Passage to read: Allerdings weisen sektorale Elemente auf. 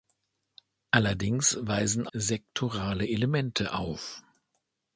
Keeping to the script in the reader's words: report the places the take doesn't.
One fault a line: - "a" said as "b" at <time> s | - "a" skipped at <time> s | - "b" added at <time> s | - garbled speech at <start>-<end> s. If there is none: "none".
none